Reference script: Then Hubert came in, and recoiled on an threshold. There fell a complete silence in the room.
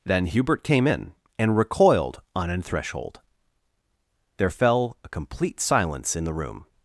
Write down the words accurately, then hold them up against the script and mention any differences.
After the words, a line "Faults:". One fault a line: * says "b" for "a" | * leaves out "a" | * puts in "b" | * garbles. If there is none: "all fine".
Then Hubert came in, and recoiled on an threshold. There fell a complete silence in the room.
Faults:
all fine